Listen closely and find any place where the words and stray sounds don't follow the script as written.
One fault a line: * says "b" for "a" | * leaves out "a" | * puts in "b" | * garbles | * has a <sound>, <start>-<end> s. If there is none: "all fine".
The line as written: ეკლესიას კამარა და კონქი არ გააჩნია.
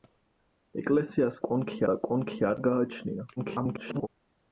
* says "კონქი" for "კამარა"
* garbles